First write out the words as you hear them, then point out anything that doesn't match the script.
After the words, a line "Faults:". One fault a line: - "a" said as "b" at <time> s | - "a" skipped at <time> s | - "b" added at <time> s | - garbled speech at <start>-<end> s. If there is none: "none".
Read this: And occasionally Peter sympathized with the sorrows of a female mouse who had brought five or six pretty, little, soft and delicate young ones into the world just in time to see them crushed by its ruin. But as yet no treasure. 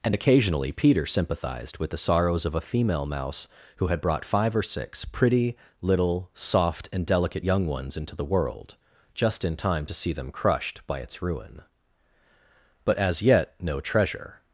And occasionally Peter sympathized with the sorrows of a female mouse who had brought five or six pretty, little, soft and delicate young ones into the world just in time to see them crushed by its ruin. But as yet no treasure.
Faults:
none